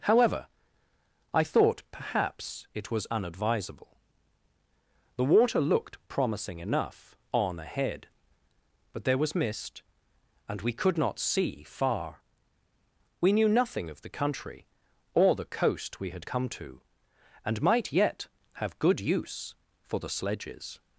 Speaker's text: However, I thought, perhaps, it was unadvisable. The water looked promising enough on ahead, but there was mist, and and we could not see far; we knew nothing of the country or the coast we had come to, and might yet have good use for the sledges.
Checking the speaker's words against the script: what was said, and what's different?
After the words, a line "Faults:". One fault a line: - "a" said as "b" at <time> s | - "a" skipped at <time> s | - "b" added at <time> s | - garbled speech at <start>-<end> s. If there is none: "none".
However, I thought, perhaps, it was unadvisable. The water looked promising enough on ahead, but there was mist, and we could not see far; we knew nothing of the country or the coast we had come to, and might yet have good use for the sledges.
Faults:
- "and" skipped at 10.6 s